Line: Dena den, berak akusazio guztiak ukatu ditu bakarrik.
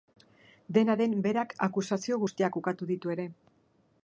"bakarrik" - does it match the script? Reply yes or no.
no